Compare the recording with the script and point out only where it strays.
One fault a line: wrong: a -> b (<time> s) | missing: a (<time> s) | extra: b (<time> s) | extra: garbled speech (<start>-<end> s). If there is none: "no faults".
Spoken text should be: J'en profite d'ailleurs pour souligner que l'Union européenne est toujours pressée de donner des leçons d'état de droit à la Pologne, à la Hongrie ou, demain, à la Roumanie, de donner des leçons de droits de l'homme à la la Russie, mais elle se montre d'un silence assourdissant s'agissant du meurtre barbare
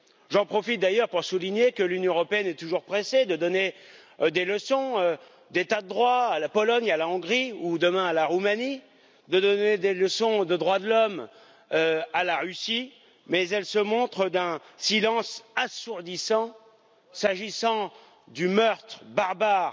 missing: la (12.4 s)